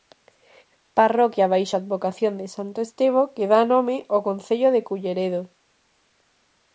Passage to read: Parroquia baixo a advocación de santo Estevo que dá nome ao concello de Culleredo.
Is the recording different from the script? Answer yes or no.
no